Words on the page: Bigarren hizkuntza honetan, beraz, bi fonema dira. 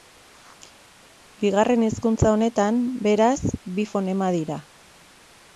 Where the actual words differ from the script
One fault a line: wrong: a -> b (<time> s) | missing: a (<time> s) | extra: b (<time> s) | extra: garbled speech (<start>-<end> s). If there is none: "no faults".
no faults